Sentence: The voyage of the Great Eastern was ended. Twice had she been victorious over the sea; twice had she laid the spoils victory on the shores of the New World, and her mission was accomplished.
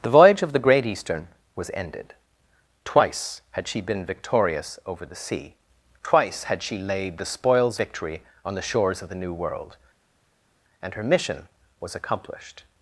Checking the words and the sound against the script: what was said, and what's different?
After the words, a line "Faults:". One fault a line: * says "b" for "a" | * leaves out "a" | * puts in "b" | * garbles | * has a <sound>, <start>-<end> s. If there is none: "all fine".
The voyage of the Great Eastern was ended. Twice had she been victorious over the sea; twice had she laid the spoils victory on the shores of the New World, and her mission was accomplished.
Faults:
all fine